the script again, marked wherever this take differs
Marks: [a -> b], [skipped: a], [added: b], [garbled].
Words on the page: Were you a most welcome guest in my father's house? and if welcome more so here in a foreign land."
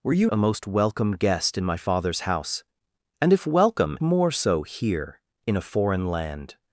Were you a most welcome guest in my father's house? and if welcome more so here in a foreign land."